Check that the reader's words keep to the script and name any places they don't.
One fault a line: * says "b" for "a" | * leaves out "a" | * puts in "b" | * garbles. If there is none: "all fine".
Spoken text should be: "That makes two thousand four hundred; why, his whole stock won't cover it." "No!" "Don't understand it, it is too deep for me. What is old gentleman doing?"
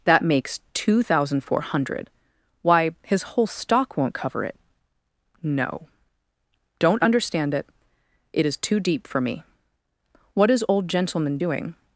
all fine